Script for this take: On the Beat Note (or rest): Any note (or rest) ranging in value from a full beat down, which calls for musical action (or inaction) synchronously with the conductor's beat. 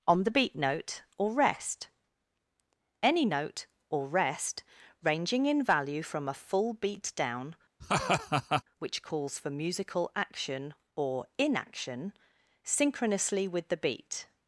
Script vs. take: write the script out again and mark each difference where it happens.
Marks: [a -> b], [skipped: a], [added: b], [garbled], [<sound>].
On the Beat Note (or rest): Any note (or rest) ranging in value from a full beat down, [laugh] which calls for musical action (or inaction) synchronously with the [skipped: conductor's] beat.